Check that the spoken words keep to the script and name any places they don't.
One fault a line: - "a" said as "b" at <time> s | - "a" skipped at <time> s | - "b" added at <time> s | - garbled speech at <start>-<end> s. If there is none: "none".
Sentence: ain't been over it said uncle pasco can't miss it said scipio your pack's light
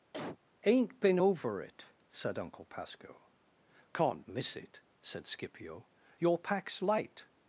none